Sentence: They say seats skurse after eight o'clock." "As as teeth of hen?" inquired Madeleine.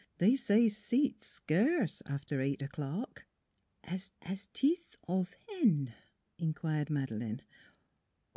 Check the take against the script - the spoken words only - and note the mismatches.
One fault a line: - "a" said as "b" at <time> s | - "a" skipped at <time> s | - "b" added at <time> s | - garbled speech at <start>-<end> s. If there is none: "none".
none